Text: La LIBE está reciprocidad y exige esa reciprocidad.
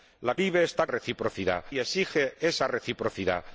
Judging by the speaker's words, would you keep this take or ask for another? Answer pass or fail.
pass